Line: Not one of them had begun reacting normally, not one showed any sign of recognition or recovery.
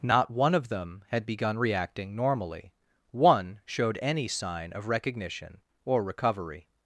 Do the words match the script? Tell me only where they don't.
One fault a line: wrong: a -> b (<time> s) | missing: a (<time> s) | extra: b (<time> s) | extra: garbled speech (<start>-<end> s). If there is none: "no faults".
missing: not (2.7 s)